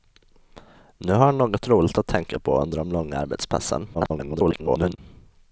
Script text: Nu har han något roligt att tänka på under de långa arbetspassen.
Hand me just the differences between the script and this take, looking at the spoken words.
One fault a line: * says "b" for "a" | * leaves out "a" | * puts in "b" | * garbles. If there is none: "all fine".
* garbles